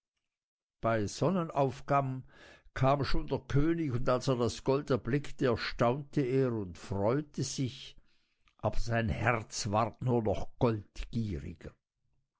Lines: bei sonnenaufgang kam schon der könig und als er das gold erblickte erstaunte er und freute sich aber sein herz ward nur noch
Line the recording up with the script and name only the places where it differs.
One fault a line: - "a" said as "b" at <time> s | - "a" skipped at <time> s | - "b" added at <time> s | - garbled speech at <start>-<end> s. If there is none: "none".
none